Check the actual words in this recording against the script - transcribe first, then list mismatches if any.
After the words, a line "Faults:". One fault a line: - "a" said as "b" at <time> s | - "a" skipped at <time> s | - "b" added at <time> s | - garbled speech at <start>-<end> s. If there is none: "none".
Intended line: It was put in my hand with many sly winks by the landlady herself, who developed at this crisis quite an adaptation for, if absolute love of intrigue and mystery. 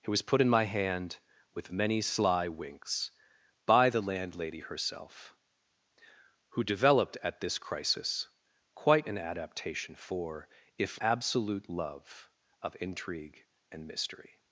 It was put in my hand with many sly winks by the landlady herself, who developed at this crisis quite an adaptation for, if absolute love of intrigue and mystery.
Faults:
none